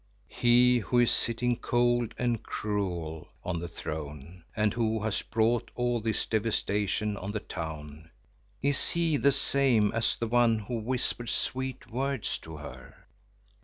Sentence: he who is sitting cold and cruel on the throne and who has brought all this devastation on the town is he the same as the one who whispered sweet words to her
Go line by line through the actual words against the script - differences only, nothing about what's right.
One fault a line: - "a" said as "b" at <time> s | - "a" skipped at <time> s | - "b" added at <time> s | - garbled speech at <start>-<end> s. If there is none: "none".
none